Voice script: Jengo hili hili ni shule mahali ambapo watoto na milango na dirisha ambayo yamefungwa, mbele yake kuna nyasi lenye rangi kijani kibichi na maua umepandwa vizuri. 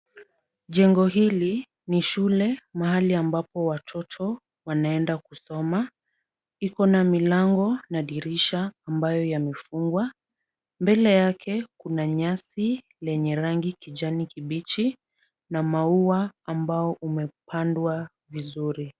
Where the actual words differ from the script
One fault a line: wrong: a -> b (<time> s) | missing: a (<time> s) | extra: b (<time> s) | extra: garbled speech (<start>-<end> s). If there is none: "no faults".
missing: hili (1.7 s)
extra: wanaenda kusoma iko (4.6 s)
extra: ambao (16.4 s)